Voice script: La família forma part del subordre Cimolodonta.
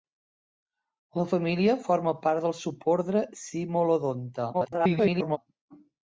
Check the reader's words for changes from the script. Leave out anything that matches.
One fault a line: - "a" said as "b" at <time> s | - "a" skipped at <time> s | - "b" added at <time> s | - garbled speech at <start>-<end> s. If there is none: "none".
- garbled speech at 4.5-5.4 s